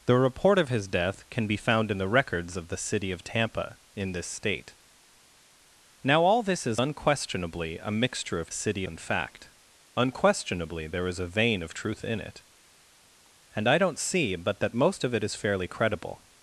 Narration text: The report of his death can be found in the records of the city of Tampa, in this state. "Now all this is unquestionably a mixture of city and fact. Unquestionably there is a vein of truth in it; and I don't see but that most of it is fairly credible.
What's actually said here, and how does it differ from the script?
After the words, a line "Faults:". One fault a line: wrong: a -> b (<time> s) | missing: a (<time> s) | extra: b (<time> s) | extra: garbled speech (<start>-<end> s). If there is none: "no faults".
The report of his death can be found in the records of the city of Tampa, in this state. "Now all this is unquestionably a mixture of city and fact. Unquestionably there is a vein of truth in it; and I don't see but that most of it is fairly credible.
Faults:
no faults